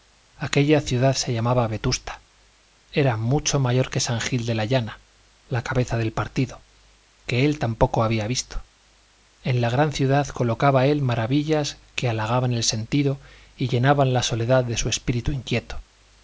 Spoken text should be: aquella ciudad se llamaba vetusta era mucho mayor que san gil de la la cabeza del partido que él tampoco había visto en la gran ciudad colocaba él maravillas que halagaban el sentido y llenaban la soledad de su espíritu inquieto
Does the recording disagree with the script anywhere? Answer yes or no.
yes